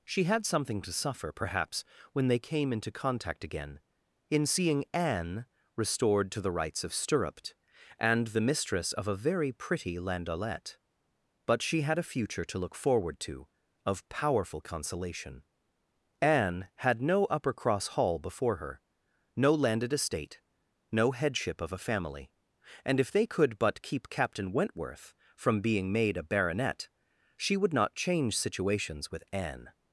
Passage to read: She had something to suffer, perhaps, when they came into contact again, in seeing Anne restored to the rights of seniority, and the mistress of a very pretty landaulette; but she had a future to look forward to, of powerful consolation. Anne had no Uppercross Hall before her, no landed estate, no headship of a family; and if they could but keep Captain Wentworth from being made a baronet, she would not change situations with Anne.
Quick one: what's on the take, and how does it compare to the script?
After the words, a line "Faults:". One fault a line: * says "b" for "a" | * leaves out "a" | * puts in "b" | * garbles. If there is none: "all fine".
She had something to suffer, perhaps, when they came into contact again, in seeing Anne restored to the rights of stirruped, and the mistress of a very pretty landaulette; but she had a future to look forward to, of powerful consolation. Anne had no Uppercross Hall before her, no landed estate, no headship of a family; and if they could but keep Captain Wentworth from being made a baronet, she would not change situations with Anne.
Faults:
* says "stirruped" for "seniority"